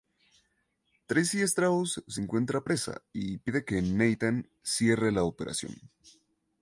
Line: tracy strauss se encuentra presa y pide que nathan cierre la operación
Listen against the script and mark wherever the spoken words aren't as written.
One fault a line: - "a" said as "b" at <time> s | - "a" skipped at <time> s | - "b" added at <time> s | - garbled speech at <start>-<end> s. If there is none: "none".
none